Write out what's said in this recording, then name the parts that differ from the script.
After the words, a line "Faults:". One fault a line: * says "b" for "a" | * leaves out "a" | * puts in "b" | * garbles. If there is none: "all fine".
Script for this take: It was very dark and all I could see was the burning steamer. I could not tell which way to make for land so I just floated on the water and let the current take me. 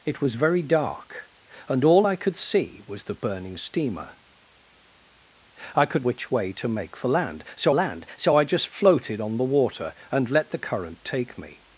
It was very dark and all I could see was the burning steamer. I could which way to make for land so land so I just floated on the water and let the current take me.
Faults:
* leaves out "not tell"
* puts in "land so"